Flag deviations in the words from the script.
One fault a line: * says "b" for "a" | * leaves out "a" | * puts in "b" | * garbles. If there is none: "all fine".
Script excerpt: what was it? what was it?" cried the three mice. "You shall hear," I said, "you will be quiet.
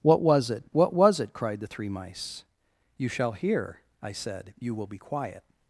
all fine